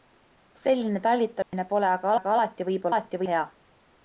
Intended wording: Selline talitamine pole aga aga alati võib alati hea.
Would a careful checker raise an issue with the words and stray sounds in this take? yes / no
yes